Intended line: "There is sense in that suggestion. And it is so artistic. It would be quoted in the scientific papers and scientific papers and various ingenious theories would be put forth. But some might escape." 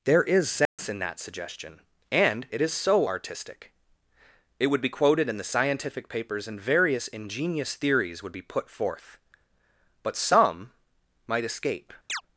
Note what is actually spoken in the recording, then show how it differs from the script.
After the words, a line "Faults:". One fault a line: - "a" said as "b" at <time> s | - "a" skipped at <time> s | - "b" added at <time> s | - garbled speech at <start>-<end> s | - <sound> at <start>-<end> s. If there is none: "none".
"There is sense in that suggestion. And it is so artistic. It would be quoted in the scientific papers and various ingenious theories would be put forth. But some might escape."
Faults:
- dropout at 0.7-0.8 s
- "scientific papers and" skipped at 6.6 s
- chirp at 12.1-12.2 s